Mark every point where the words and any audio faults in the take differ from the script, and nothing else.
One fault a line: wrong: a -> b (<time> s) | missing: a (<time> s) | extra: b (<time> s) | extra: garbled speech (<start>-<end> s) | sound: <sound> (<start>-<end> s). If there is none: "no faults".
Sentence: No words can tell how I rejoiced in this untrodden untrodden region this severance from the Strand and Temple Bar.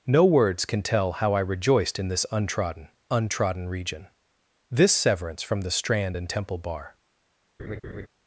sound: laugh (7.6-8.1 s)